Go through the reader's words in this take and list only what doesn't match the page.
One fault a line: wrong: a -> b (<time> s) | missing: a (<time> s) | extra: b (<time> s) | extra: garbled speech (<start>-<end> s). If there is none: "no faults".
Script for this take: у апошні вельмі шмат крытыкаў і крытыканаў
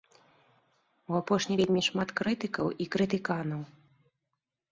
no faults